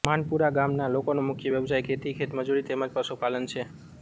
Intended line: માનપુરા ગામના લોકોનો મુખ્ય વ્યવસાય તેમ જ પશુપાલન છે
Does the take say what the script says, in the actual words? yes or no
no